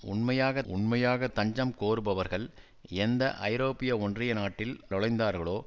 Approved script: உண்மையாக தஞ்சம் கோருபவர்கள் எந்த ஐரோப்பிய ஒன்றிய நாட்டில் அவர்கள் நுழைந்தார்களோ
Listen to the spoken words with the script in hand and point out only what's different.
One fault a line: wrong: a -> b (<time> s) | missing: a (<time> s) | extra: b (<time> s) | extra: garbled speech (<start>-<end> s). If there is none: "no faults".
extra: உண்மையாக (0.6 s)
missing: அவர்கள் (4.7 s)